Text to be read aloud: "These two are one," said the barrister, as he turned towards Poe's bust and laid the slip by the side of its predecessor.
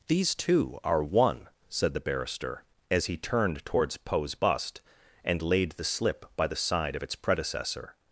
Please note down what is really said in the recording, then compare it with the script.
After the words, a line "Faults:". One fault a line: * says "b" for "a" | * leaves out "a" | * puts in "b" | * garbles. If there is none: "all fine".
"These two are one," said the barrister, as he turned towards Poe's bust and laid the slip by the side of its predecessor.
Faults:
all fine